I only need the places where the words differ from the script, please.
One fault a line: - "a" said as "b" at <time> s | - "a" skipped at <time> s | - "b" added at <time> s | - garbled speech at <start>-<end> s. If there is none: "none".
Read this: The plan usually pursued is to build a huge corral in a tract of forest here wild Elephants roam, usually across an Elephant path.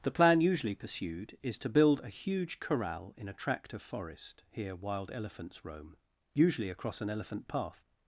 none